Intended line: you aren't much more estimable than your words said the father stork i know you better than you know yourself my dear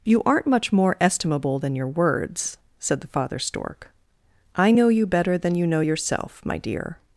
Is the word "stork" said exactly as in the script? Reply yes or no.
yes